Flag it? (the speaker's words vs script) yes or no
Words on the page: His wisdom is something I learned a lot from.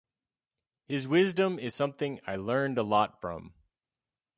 no